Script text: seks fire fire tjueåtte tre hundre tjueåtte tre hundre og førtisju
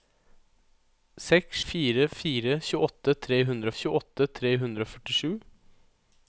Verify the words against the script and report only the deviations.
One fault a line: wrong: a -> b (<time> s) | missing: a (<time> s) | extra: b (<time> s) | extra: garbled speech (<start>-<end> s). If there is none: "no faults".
no faults